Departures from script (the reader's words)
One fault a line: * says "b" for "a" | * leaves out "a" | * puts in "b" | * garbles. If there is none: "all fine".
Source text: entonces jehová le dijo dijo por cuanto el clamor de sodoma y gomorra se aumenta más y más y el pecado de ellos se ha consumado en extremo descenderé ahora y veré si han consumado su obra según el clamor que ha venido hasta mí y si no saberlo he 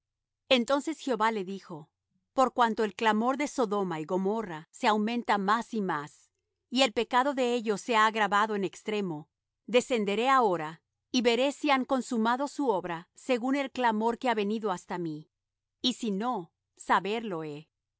* leaves out "dijo"
* says "agravado" for "consumado"